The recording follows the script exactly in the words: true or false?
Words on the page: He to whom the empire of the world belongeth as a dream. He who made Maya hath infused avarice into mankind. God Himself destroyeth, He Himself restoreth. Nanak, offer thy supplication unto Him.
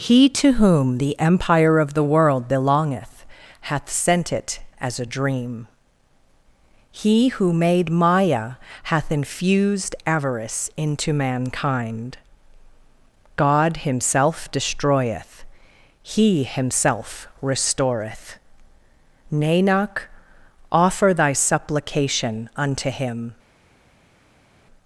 false